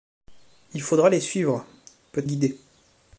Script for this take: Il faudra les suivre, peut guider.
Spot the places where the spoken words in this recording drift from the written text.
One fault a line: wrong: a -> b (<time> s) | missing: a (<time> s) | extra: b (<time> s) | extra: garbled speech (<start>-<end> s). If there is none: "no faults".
no faults